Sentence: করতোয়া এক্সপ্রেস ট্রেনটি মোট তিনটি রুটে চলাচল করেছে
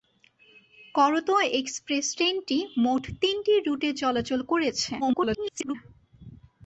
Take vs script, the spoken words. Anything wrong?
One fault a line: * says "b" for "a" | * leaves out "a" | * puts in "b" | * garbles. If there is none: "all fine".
* garbles